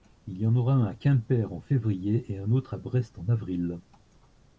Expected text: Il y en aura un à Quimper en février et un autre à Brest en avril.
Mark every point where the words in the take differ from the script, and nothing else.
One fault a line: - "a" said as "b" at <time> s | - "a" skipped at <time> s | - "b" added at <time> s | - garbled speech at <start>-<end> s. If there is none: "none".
none